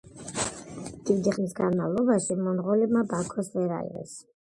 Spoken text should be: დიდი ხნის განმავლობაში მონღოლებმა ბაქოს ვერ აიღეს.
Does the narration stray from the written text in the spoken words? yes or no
no